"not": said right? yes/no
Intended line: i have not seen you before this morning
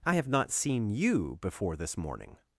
yes